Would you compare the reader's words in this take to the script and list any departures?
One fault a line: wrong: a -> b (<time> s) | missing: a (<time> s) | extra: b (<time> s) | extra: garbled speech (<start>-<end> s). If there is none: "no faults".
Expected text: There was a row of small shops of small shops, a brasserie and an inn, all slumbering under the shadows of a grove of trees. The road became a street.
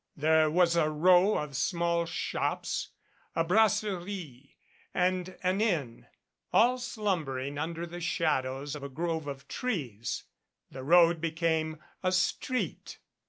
missing: of small shops (2.9 s)